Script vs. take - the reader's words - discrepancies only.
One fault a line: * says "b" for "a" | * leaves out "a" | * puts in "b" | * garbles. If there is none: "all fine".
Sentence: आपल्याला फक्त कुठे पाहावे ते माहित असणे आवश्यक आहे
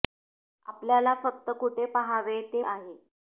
* leaves out "माहित असणे आवश्यक"